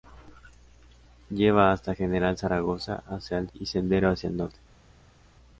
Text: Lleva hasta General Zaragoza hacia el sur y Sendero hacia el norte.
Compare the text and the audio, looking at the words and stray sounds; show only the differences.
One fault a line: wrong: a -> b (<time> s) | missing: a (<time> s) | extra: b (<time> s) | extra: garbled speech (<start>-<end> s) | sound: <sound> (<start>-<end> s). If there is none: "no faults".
missing: sur (3.5 s)